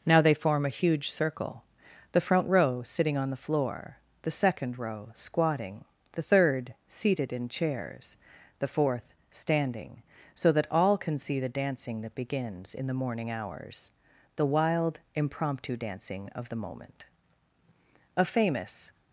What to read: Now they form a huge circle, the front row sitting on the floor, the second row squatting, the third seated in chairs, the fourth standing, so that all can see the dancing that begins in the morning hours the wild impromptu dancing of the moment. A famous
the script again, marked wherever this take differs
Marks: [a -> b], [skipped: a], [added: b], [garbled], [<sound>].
Now they form a huge circle, the front row sitting on the floor, the second row squatting, the third seated in chairs, the fourth standing, so that all can see the dancing that begins in the morning hours the wild impromptu dancing of the moment. A famous